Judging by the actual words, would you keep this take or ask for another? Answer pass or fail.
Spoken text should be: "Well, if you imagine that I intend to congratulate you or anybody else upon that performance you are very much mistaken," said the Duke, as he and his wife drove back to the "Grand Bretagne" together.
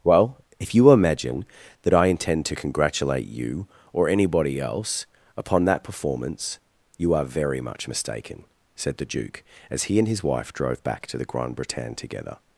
pass